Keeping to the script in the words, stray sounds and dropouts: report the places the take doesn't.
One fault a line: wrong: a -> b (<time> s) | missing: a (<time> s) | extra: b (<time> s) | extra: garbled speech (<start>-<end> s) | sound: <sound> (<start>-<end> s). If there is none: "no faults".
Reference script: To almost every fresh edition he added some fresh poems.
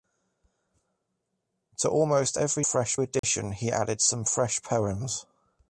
sound: dropout (3.2-3.2 s)